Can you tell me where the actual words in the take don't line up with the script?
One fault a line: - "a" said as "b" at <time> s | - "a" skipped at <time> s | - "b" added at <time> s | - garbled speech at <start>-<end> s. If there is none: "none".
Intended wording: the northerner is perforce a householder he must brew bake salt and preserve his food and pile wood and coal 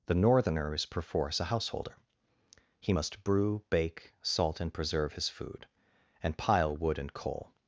none